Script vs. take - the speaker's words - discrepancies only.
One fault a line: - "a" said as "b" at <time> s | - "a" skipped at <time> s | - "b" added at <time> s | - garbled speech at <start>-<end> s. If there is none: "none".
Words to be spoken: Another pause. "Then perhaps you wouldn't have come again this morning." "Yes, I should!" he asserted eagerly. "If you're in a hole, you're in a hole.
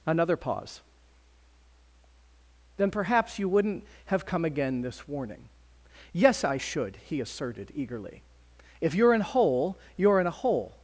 - "morning" said as "warning" at 5.1 s
- "a" skipped at 9.2 s